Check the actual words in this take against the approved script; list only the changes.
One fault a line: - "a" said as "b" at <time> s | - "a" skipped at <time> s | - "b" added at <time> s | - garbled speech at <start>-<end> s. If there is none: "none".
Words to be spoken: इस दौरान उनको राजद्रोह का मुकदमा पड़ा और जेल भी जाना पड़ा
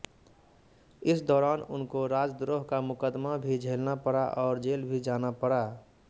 - "भी झेलना" added at 3.4 s